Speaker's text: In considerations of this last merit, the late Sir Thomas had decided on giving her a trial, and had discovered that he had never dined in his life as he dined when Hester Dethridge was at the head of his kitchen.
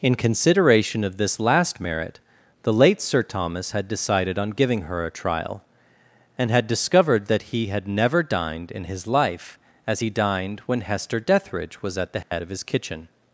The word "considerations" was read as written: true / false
false